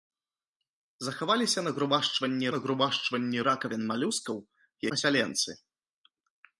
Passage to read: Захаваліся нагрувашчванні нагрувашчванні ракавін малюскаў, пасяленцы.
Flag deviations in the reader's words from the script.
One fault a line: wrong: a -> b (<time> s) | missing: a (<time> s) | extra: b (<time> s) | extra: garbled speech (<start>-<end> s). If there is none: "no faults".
no faults